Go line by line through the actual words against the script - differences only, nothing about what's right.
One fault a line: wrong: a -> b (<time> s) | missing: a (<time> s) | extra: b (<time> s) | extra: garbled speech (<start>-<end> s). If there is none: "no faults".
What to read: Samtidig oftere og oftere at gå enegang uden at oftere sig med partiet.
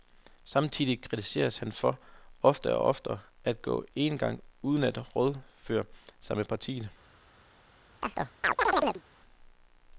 extra: kritiseres han for (1.0 s)
wrong: oftere -> rådføre (5.1 s)